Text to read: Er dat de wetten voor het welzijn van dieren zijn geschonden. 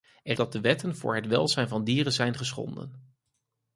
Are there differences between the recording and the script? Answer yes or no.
no